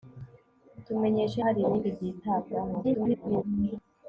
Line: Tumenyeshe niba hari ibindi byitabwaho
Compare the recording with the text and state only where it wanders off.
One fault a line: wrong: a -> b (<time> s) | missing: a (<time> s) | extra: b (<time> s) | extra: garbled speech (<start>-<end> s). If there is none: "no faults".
missing: niba (1.4 s)
extra: garbled speech (2.8-3.4 s)